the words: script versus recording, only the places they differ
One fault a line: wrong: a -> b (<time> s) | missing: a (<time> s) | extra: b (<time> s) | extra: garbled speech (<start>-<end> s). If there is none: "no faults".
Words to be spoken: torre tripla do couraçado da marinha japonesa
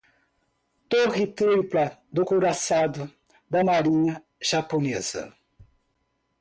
no faults